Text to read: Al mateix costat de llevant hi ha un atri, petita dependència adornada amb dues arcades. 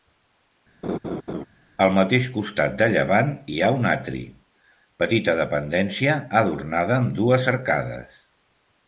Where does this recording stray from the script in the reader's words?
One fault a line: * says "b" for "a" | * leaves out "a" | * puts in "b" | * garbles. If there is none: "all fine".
all fine